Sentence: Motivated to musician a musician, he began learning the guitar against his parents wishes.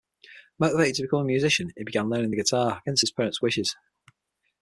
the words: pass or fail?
fail